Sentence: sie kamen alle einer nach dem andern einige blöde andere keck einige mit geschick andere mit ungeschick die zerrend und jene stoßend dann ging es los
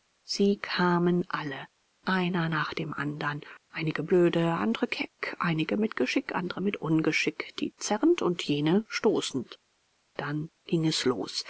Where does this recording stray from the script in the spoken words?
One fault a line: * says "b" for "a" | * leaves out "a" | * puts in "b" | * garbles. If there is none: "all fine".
all fine